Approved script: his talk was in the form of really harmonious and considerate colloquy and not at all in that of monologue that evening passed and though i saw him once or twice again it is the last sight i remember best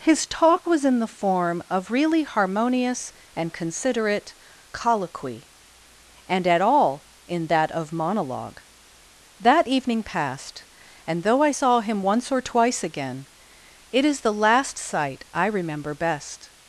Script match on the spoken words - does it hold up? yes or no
no